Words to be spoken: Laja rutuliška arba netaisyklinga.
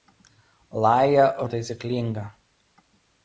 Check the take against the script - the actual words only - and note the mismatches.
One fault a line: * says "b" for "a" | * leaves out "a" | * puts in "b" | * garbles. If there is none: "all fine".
* leaves out "rutuliška arba"